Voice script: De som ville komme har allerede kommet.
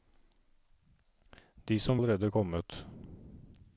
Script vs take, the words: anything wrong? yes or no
yes